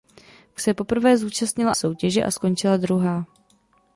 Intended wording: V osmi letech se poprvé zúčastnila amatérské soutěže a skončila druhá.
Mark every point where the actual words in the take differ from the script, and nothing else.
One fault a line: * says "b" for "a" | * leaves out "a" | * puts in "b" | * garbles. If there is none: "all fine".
* leaves out "osmi letech"
* leaves out "amatérské"